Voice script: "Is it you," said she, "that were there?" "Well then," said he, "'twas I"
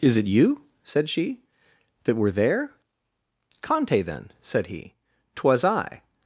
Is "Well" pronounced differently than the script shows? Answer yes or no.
yes